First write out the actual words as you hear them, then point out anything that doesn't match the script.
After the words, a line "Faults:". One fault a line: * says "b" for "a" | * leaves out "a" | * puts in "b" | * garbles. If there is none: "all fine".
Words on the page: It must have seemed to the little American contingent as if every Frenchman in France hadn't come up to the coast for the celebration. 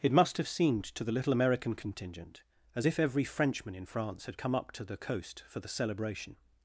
It must have seemed to the little American contingent as if every Frenchman in France had come up to the coast for the celebration.
Faults:
* says "had" for "hadn't"